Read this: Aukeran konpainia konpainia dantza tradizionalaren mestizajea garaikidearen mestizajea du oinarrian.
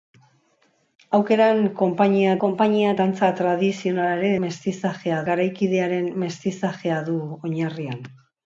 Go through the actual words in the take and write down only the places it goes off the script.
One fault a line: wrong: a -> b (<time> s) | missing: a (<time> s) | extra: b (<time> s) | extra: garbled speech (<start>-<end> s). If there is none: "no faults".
no faults